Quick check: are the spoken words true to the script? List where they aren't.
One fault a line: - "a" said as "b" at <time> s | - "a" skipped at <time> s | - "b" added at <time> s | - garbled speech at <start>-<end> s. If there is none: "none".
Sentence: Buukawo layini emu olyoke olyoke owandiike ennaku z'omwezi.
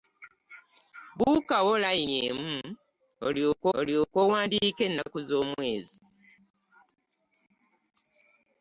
none